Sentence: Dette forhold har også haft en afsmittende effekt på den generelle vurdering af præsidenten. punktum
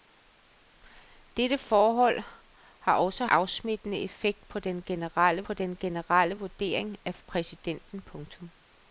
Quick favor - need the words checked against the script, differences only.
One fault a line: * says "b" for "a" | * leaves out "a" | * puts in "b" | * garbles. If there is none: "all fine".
* says "afsmittende effekt på den generelle" for "haft en afsmittende effekt"